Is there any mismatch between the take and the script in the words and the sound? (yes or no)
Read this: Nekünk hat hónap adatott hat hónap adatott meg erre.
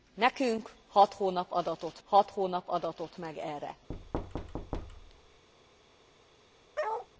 yes